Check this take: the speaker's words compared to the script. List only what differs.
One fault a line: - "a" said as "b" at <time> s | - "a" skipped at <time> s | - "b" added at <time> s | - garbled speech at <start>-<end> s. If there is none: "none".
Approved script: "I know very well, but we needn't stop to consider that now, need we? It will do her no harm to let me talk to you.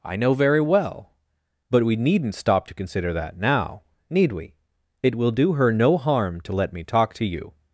none